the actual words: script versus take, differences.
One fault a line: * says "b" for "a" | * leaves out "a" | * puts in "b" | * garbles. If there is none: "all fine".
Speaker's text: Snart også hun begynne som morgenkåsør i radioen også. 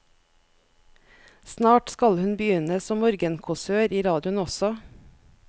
* says "skal" for "også"